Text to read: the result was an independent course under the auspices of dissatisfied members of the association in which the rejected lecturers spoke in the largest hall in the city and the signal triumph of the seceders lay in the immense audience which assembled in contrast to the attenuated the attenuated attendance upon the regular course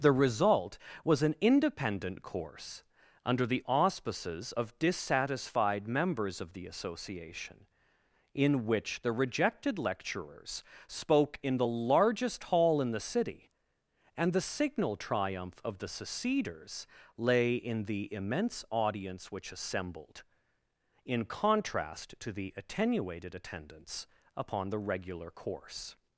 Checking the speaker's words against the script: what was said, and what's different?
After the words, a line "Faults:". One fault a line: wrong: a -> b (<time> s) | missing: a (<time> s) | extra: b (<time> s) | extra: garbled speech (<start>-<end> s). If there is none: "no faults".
the result was an independent course under the auspices of dissatisfied members of the association in which the rejected lecturers spoke in the largest hall in the city and the signal triumph of the seceders lay in the immense audience which assembled in contrast to the attenuated attendance upon the regular course
Faults:
missing: the attenuated (23.3 s)